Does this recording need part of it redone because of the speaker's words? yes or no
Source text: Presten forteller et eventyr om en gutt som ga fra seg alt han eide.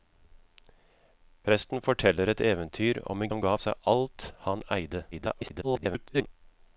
yes